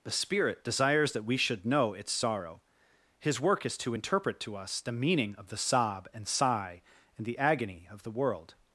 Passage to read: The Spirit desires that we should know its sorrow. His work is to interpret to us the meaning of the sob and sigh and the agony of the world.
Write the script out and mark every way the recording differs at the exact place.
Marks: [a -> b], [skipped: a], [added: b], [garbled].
The Spirit desires that we should know its sorrow. His work is to interpret to us the meaning of the sob and sigh and the agony of the world.